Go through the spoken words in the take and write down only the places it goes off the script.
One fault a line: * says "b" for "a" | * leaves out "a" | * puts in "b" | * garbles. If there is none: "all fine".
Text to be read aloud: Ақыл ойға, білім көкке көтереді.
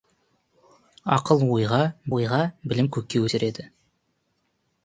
* puts in "ойға"